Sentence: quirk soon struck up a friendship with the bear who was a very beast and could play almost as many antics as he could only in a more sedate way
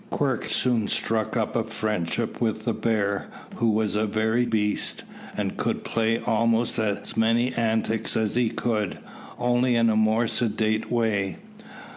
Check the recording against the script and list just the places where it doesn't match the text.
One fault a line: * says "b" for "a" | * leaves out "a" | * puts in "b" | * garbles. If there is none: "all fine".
all fine